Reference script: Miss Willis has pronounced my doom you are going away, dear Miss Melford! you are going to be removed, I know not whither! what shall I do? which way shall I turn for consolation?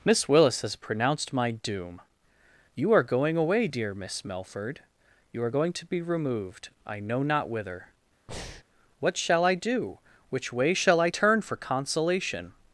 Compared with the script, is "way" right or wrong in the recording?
right